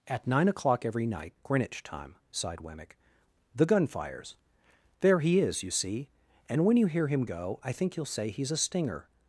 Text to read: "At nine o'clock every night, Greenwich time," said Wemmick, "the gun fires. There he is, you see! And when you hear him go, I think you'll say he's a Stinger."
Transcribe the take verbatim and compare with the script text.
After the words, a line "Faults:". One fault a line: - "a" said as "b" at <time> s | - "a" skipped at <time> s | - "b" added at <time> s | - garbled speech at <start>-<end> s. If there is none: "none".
"At nine o'clock every night, Greenwich time," sighed Wemmick, "the gun fires. There he is, you see! And when you hear him go, I think you'll say he's a Stinger."
Faults:
- "said" said as "sighed" at 2.3 s